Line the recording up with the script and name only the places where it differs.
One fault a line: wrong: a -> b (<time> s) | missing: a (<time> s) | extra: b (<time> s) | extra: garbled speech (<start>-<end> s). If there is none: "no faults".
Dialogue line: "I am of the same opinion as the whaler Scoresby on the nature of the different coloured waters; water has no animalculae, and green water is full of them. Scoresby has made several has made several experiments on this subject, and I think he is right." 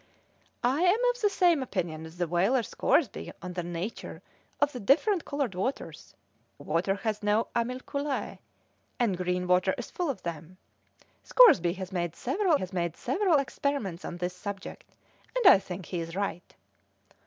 no faults